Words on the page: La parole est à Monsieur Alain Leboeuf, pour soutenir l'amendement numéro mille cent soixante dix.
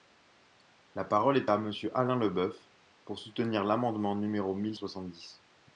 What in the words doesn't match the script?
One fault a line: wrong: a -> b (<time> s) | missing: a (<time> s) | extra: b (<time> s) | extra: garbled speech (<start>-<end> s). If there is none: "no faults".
missing: cent (4.8 s)